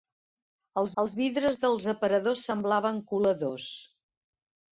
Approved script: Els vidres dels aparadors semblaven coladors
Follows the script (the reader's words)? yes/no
no